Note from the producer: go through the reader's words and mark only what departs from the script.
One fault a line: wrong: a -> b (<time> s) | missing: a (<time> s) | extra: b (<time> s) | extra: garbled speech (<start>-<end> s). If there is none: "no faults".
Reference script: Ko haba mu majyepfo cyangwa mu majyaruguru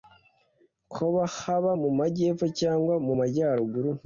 no faults